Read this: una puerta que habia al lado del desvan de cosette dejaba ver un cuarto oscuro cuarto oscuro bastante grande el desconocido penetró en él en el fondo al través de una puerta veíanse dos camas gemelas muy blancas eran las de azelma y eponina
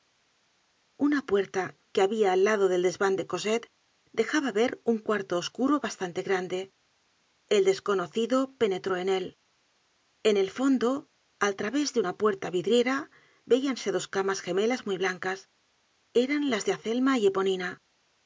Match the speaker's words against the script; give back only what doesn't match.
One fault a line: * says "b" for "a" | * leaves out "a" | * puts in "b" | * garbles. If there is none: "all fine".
* leaves out "cuarto oscuro"
* puts in "vidriera"